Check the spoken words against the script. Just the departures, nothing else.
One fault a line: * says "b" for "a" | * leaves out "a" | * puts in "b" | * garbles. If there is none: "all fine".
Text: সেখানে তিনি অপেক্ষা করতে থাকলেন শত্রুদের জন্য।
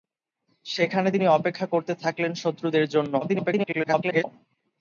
* garbles